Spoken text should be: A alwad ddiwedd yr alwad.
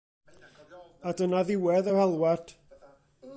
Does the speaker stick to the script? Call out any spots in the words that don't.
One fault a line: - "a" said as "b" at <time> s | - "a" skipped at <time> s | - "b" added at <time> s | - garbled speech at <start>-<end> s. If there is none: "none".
- "alwad" said as "dyna" at 1.2 s